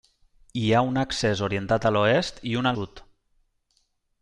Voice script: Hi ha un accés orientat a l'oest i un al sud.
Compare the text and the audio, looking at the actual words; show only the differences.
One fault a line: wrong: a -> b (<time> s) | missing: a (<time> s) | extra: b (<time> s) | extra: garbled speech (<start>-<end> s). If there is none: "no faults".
missing: al (2.7 s)